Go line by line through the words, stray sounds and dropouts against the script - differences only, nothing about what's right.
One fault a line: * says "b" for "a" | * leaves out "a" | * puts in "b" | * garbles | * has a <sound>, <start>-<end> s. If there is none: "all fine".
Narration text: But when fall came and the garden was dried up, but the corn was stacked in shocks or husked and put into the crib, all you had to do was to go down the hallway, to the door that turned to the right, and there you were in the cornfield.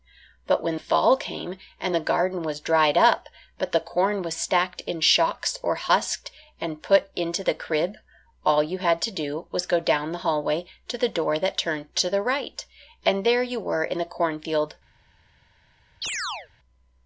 * has a chirp, 16.0-16.5 s